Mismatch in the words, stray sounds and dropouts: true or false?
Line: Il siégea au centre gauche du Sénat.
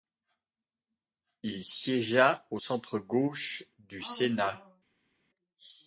false